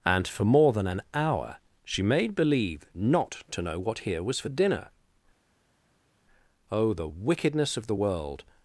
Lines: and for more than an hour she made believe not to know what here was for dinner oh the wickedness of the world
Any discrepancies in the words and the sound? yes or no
no